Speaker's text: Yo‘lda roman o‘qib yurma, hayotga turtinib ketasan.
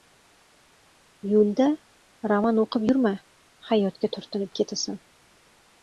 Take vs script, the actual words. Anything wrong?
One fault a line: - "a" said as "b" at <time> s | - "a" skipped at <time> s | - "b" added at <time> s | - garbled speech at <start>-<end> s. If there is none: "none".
none